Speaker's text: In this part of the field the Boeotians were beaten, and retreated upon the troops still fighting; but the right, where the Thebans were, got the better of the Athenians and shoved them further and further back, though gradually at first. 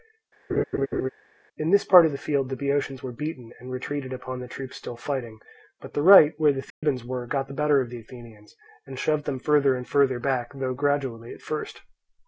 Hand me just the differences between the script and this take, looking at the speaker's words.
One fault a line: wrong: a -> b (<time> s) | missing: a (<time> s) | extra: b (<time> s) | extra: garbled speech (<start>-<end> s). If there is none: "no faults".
no faults